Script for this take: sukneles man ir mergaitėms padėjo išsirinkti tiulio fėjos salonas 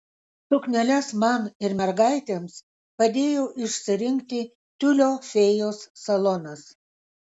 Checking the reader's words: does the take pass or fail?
pass